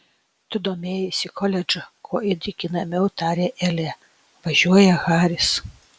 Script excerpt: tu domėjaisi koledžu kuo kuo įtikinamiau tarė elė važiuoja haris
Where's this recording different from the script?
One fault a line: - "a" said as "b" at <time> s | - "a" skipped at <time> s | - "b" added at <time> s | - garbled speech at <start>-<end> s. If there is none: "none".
- "kuo" skipped at 2.2 s